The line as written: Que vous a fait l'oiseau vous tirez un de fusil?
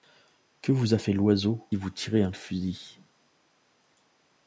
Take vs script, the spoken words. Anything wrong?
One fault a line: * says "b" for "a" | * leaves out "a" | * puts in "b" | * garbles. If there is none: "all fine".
all fine